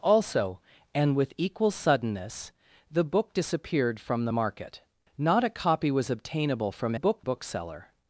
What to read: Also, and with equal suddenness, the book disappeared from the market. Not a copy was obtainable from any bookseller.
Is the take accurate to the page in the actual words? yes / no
no